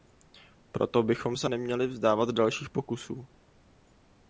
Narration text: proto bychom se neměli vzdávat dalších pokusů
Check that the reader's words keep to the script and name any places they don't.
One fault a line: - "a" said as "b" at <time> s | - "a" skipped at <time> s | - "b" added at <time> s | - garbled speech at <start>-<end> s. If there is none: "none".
none